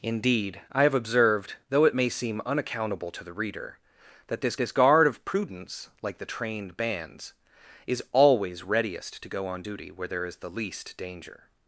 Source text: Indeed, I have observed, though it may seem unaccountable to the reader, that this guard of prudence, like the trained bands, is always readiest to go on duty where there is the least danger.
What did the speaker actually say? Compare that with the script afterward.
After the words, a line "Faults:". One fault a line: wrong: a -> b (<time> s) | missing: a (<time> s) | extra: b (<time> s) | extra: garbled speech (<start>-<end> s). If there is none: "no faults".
Indeed, I have observed, though it may seem unaccountable to the reader, that this this guard of prudence, like the trained bands, is always readiest to go on duty where there is the least danger.
Faults:
extra: this (4.6 s)